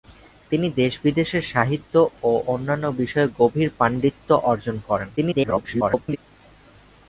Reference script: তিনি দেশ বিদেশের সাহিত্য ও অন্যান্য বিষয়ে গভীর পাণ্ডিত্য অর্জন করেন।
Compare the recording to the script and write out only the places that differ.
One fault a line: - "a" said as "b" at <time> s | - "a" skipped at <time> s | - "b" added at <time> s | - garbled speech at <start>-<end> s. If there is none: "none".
- garbled speech at 5.2-6.2 s